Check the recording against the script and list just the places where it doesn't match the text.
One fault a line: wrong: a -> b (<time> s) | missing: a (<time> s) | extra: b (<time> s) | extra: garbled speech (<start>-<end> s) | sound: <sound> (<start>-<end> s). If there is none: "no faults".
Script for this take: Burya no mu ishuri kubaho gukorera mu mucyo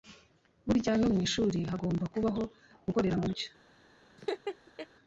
extra: hagomba (1.7 s)
sound: laugh (4.2-4.9 s)